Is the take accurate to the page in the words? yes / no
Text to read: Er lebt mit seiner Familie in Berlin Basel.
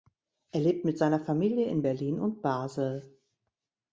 no